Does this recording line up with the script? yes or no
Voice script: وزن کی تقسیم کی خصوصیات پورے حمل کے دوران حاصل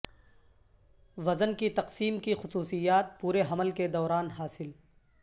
yes